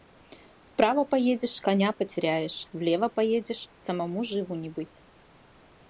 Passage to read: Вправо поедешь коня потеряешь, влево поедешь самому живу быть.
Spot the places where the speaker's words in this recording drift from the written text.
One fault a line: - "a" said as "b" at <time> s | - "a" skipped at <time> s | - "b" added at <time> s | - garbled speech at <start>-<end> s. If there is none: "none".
- "не" added at 4.5 s